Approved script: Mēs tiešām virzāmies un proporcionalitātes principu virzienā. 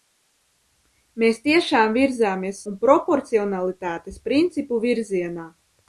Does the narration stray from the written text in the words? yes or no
no